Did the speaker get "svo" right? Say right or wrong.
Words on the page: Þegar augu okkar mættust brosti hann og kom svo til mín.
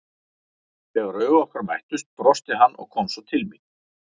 right